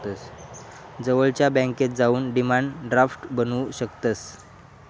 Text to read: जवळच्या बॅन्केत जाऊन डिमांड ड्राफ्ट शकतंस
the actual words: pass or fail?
fail